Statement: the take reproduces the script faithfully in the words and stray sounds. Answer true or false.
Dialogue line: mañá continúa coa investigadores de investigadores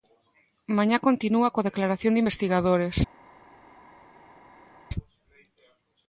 false